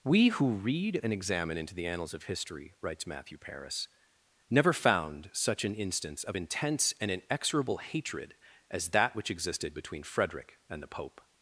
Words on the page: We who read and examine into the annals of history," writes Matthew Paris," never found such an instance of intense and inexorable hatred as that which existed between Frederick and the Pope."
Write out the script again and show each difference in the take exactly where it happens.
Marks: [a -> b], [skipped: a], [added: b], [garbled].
We who read and examine into the annals of history," writes Matthew Paris," never found such an instance of intense and inexorable hatred as that which existed between Frederick and the Pope."